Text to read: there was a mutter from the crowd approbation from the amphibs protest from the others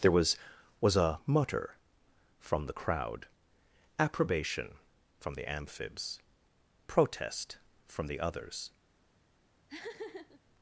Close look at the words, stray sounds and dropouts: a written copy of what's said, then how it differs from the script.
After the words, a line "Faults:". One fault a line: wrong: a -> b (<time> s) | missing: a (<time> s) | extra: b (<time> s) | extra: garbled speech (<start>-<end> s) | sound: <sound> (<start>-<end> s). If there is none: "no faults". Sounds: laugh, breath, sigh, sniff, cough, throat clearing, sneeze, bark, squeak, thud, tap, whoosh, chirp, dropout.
there was was a mutter from the crowd approbation from the amphibs protest from the others
Faults:
extra: was (0.8 s)
sound: laugh (9.7-10.4 s)